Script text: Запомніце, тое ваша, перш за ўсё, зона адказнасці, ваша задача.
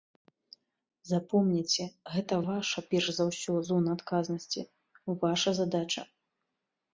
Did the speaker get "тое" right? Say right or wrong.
wrong